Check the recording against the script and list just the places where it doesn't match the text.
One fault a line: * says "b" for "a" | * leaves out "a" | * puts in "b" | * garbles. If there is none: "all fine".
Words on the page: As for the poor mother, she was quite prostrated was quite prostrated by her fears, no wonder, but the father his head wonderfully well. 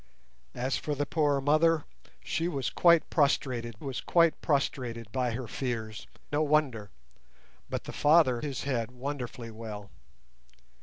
all fine